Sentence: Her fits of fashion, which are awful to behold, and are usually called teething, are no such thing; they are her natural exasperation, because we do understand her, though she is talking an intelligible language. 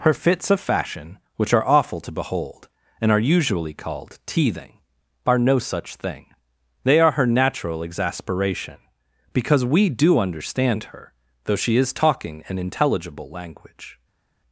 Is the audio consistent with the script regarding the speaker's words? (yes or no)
yes